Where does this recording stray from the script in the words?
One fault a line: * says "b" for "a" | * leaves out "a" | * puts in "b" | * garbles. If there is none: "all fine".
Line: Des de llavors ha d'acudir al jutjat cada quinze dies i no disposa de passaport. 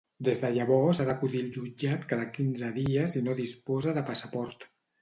all fine